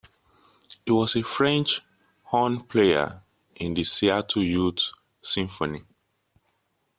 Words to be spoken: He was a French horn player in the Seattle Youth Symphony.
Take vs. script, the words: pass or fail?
pass